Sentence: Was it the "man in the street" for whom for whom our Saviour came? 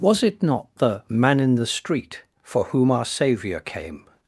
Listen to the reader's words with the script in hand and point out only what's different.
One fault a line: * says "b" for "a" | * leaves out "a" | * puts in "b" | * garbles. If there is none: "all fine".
* puts in "not"
* leaves out "for whom"